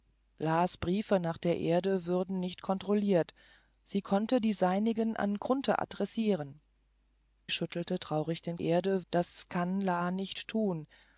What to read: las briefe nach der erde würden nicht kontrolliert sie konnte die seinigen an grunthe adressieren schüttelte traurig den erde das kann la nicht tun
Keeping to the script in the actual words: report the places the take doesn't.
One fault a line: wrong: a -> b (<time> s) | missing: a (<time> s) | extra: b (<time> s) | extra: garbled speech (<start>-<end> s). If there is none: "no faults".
no faults